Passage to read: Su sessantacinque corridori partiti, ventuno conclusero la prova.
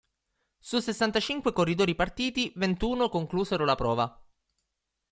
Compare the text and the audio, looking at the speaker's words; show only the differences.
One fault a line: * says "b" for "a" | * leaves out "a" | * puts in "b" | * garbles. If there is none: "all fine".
all fine